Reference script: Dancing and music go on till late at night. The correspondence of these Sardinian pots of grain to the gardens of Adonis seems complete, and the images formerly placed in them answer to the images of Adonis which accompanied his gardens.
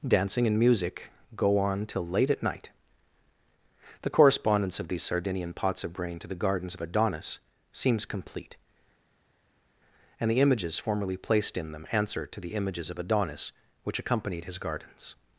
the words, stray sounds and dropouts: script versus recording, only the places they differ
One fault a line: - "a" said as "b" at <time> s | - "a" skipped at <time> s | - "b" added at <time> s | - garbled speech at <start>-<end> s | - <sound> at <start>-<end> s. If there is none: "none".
- "grain" said as "brain" at 5.9 s